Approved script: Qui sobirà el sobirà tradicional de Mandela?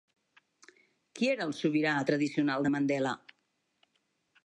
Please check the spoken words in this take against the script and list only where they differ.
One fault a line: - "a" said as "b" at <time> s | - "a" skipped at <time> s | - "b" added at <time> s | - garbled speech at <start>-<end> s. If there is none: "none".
- "sobirà" said as "era" at 1.3 s